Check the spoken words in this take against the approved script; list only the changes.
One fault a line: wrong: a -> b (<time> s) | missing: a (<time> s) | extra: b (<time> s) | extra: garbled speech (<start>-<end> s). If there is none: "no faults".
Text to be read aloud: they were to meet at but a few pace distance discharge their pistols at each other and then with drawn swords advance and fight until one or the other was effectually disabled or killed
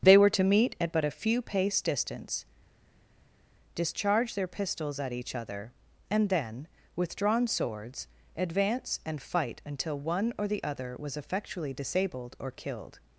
no faults